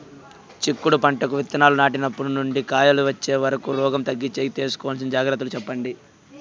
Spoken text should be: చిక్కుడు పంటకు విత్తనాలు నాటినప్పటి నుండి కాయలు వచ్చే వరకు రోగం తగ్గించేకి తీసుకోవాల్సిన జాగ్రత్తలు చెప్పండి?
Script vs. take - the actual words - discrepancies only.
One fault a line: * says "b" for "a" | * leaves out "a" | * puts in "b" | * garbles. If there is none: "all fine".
all fine